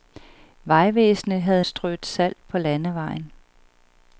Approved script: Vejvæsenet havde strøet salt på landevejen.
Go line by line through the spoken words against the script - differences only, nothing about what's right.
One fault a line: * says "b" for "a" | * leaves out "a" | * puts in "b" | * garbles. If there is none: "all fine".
all fine